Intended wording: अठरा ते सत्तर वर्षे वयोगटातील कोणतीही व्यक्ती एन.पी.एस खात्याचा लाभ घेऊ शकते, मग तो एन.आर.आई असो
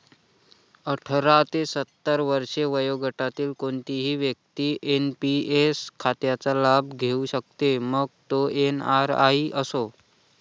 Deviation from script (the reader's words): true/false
false